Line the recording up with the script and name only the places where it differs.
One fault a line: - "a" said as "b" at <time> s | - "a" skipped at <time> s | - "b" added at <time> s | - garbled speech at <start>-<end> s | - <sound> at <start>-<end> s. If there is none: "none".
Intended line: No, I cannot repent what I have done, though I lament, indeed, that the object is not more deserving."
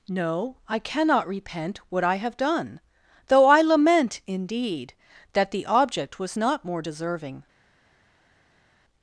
- "is" said as "was" at 6.2 s